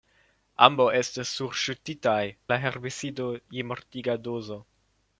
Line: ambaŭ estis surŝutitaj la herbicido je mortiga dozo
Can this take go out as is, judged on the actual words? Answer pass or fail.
pass